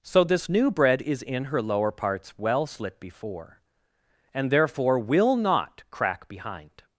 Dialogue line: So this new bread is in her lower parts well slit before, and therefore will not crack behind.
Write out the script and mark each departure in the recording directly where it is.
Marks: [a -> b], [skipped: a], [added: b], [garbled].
So this new bread is in her lower parts well slit before, and therefore will not crack behind.